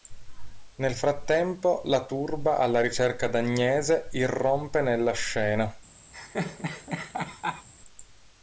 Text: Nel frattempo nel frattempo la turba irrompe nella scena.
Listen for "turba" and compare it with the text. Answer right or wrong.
wrong